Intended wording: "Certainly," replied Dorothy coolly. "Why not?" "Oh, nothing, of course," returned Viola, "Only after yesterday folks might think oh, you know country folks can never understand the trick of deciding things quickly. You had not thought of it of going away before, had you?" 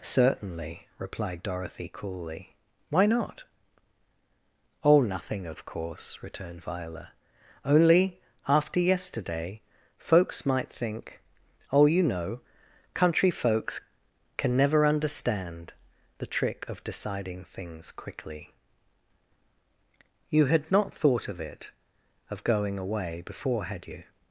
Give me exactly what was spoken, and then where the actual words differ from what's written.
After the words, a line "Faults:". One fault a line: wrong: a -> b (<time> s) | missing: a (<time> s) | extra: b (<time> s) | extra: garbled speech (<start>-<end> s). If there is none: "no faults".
"Certainly," replied Dorothy coolly. "Why not?" "Oh, nothing, of course," returned Viola, "Only after yesterday folks might think oh, you know country folks can never understand the trick of deciding things quickly. You had not thought of it of going away before, had you?"
Faults:
no faults